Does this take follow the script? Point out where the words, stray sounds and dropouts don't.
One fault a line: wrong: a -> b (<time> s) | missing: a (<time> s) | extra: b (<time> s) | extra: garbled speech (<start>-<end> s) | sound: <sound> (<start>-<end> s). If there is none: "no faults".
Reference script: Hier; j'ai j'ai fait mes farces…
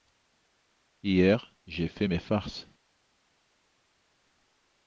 missing: j'ai (1.9 s)